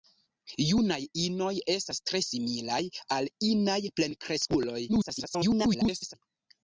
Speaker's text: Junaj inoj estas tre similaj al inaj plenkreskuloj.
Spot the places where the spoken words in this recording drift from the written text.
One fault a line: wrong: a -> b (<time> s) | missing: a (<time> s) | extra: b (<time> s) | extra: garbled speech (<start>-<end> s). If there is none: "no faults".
extra: garbled speech (4.9-6.1 s)